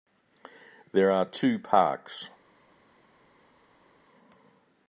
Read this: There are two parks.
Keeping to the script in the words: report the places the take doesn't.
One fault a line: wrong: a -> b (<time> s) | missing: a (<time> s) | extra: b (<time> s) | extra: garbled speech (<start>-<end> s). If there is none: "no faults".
no faults